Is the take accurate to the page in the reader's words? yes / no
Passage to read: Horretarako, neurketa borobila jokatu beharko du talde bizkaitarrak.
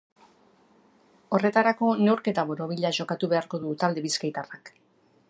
yes